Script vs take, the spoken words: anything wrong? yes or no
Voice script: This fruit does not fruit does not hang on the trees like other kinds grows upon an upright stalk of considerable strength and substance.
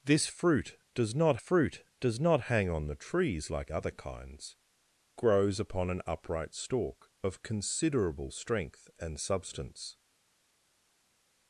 no